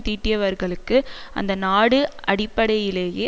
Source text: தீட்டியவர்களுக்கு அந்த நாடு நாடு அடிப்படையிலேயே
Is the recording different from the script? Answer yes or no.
yes